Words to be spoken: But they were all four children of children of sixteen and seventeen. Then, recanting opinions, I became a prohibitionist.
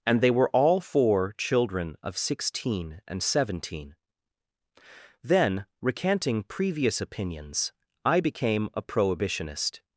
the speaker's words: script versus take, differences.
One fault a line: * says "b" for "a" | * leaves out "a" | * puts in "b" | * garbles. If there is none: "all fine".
* says "And" for "But"
* leaves out "children of"
* puts in "previous"